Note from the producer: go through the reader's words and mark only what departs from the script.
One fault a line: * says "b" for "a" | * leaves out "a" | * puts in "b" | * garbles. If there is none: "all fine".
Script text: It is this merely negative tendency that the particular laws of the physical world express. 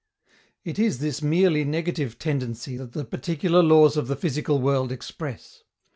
all fine